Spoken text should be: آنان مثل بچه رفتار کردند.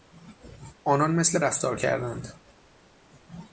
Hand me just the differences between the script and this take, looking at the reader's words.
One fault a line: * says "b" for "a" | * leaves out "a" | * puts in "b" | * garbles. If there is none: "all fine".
* leaves out "بچه"